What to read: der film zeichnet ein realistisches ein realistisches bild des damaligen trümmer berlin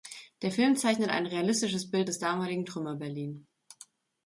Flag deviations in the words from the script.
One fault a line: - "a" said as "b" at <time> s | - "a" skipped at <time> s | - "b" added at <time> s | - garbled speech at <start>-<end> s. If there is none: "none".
- "ein realistisches" skipped at 1.9 s